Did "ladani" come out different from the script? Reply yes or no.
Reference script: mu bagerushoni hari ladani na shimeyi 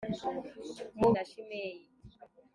yes